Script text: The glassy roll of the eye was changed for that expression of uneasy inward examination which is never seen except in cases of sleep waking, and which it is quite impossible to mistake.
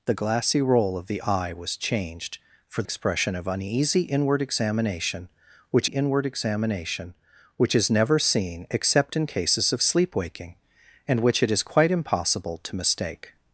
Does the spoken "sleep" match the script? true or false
true